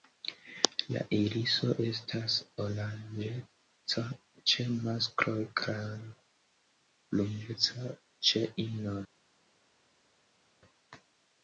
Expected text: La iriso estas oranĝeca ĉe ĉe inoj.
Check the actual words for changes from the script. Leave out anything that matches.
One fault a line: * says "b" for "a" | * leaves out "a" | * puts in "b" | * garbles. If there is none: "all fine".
* puts in "maskloj kaj bruneca"